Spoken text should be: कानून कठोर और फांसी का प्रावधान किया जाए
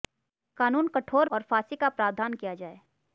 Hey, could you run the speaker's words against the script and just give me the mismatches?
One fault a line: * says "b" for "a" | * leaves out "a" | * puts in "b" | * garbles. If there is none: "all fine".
all fine